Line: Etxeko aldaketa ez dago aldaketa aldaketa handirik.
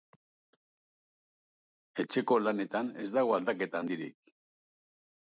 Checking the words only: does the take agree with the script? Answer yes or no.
no